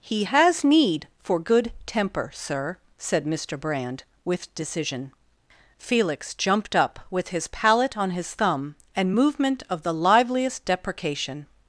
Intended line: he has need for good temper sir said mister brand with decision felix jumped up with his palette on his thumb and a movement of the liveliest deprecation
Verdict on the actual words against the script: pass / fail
fail